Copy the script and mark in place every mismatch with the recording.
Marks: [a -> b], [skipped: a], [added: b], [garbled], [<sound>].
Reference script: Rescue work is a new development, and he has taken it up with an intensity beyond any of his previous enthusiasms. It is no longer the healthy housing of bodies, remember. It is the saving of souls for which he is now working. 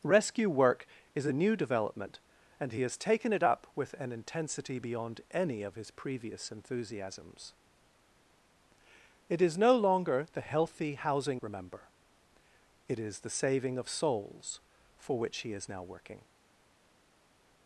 Rescue work is a new development, and he has taken it up with an intensity beyond any of his previous enthusiasms. It is no longer the healthy housing [skipped: of bodies,] remember. It is the saving of souls for which he is now working.